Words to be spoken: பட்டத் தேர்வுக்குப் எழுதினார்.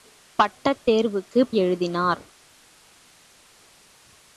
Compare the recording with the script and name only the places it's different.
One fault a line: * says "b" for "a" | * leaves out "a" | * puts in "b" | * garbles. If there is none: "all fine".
all fine